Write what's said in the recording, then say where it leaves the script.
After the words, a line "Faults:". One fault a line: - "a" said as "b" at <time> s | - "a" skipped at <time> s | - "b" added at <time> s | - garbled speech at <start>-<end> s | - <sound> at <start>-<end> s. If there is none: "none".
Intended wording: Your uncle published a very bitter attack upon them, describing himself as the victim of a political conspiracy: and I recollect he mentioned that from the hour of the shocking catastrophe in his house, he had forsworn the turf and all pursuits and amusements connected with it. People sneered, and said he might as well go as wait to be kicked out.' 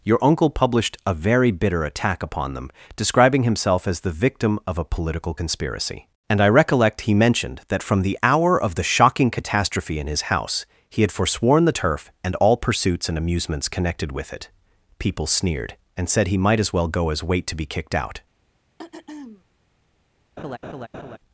Your uncle published a very bitter attack upon them, describing himself as the victim of a political conspiracy: and I recollect he mentioned that from the hour of the shocking catastrophe in his house, he had forsworn the turf and all pursuits and amusements connected with it. People sneered, and said he might as well go as wait to be kicked out.'
Faults:
- throat clearing at 18.8-19.4 s
- laugh at 20.4-21.2 s